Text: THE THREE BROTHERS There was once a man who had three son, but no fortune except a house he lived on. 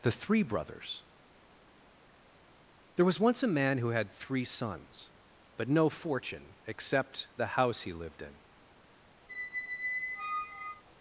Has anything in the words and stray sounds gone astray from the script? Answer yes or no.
yes